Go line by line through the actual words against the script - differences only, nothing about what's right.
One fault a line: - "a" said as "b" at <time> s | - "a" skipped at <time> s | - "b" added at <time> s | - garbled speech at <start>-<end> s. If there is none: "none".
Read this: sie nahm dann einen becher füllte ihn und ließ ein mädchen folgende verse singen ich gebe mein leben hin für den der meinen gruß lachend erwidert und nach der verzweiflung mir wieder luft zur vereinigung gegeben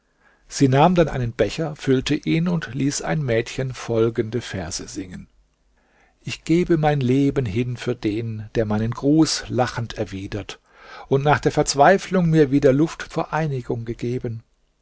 - "zur" skipped at 13.1 s